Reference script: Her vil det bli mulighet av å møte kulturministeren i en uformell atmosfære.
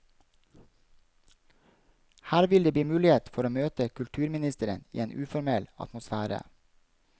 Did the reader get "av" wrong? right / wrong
wrong